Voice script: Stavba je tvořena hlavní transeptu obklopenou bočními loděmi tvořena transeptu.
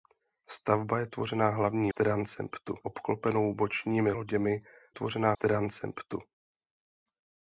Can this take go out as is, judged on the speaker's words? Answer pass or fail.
pass